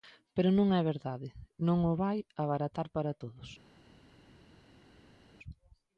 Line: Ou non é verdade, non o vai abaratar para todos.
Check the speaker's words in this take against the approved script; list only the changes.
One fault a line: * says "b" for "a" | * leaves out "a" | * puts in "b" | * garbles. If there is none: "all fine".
* says "Pero" for "Ou"